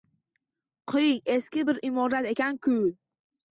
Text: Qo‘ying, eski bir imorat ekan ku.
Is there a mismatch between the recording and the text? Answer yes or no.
no